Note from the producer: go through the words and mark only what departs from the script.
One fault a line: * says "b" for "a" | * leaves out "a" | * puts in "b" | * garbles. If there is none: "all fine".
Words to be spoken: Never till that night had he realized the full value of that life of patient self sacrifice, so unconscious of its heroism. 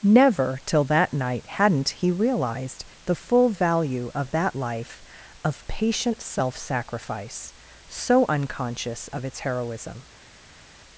* says "hadn't" for "had"